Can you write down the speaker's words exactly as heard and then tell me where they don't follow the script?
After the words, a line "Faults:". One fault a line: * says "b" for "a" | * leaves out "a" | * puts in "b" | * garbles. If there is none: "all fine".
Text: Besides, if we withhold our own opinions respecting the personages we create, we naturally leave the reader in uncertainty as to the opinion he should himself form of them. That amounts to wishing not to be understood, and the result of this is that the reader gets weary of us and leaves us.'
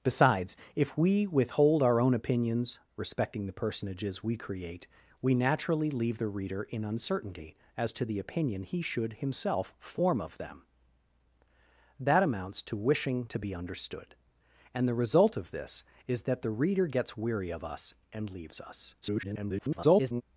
Besides, if we withhold our own opinions respecting the personages we create, we naturally leave the reader in uncertainty as to the opinion he should himself form of them. That amounts to wishing to be understood, and the result of this is that the reader gets weary of us and leaves us.' [garbled]
Faults:
* leaves out "not"
* garbles